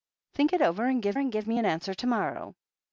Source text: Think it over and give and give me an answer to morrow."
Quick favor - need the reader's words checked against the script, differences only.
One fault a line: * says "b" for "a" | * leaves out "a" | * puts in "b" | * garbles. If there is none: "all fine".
all fine